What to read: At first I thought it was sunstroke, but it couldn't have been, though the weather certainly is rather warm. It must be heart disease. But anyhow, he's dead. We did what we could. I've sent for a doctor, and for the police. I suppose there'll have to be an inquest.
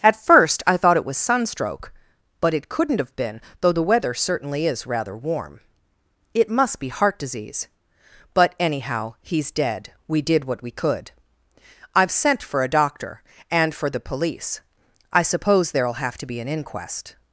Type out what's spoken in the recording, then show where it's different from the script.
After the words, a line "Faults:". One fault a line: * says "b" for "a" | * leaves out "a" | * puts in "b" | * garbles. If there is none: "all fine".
At first I thought it was sunstroke, but it couldn't have been, though the weather certainly is rather warm. It must be heart disease. But anyhow, he's dead. We did what we could. I've sent for a doctor, and for the police. I suppose there'll have to be an inquest.
Faults:
all fine